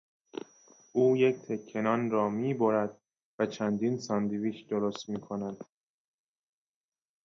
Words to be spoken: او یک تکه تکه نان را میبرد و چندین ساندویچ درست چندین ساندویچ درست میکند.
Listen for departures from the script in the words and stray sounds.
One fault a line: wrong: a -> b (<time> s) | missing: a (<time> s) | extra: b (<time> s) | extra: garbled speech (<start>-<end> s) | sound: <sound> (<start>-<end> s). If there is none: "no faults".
missing: تکه (1.8 s)
missing: چندین ساندویچ درست (5.1 s)